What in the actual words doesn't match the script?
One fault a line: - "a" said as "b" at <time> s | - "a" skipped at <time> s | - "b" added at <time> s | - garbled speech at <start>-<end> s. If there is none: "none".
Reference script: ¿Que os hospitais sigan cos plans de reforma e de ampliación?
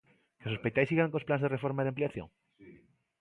none